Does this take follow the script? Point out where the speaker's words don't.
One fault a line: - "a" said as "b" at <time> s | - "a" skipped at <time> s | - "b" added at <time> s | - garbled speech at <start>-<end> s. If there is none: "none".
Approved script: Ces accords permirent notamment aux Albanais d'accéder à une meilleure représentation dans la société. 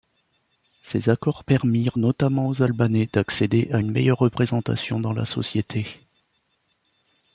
none